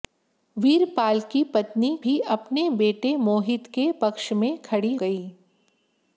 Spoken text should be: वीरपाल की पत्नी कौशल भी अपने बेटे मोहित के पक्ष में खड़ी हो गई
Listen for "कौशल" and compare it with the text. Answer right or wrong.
wrong